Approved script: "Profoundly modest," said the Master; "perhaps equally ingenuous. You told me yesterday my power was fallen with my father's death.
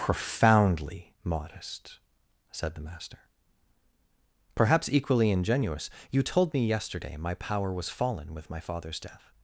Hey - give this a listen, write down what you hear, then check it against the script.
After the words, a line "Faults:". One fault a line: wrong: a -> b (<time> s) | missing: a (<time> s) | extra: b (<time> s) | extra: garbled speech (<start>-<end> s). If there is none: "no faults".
"Profoundly modest," said the Master; "perhaps equally ingenuous. You told me yesterday my power was fallen with my father's death.
Faults:
no faults